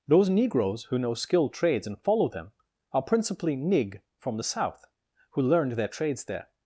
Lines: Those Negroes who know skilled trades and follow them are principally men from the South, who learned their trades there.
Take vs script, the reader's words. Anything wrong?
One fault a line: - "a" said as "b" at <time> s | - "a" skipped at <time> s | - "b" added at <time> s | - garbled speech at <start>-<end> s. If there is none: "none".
- "men" said as "nig" at 3.5 s